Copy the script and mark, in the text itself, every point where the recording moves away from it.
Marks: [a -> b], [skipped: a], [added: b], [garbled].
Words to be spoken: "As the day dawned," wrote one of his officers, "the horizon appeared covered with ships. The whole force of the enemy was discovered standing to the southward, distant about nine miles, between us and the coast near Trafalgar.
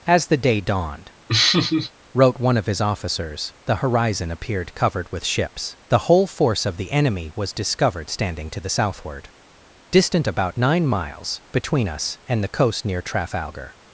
"As the day dawned," wrote one of his officers, "the horizon appeared covered with ships. The whole force of the enemy was discovered standing to the southward, distant about nine miles, between us and the coast near Trafalgar.